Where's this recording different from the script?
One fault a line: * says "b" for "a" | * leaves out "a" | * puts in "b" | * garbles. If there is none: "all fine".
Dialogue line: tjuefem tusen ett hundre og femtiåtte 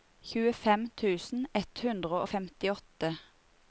all fine